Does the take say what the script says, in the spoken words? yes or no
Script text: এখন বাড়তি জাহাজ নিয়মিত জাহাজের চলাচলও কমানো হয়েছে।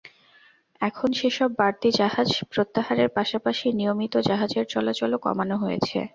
no